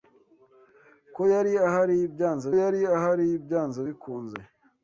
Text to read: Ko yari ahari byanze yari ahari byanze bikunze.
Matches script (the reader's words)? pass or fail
pass